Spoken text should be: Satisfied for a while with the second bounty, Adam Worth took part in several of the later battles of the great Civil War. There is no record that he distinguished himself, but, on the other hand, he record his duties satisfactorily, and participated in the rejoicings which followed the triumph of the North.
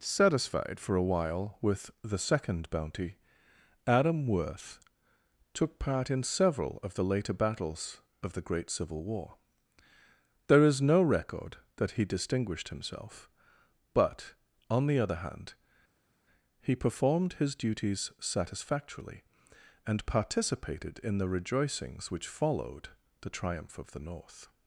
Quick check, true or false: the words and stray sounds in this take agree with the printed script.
false